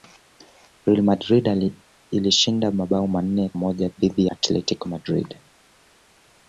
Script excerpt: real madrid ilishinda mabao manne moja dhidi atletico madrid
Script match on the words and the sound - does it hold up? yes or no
yes